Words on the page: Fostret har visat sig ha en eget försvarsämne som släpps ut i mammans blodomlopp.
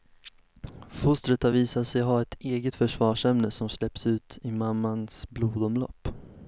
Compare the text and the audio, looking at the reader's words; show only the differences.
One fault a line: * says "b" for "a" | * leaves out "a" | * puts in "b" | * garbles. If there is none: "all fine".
* says "ett" for "en"